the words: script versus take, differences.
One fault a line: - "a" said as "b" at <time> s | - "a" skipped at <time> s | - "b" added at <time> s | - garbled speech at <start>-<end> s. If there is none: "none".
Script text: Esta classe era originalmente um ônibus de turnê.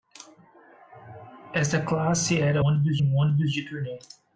- "originalmente" said as "ônibus" at 2.6 s